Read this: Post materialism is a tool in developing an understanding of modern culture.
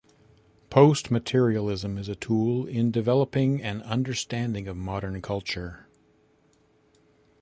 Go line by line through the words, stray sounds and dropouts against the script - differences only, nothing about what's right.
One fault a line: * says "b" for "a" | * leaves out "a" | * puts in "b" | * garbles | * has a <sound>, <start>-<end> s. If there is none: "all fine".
all fine